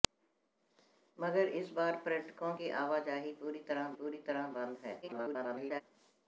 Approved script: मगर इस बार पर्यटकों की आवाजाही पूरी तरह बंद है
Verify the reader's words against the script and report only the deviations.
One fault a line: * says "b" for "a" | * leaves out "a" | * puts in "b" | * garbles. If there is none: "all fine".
* puts in "पूरी तरह"
* garbles